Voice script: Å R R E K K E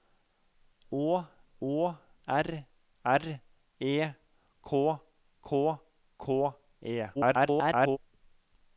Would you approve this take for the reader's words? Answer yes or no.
no